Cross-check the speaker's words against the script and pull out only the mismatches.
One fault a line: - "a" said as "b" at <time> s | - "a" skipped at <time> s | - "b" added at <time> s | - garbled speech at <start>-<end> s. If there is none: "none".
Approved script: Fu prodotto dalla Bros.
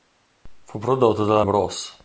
none